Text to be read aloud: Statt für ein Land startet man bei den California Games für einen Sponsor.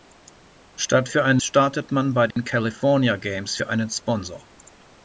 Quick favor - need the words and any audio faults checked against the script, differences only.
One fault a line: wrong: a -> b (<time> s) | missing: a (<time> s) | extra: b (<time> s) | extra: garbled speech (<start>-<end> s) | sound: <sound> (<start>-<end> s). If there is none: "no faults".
missing: Land (1.4 s)
sound: dropout (2.3-2.4 s)